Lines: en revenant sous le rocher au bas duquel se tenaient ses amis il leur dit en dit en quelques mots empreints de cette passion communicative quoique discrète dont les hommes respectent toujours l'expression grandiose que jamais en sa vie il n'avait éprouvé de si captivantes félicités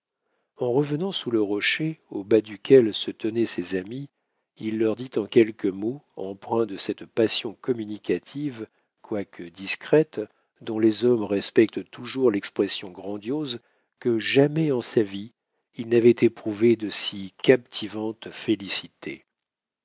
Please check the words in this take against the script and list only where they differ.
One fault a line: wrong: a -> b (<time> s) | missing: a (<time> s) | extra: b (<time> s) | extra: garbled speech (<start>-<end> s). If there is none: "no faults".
missing: dit en (5.3 s)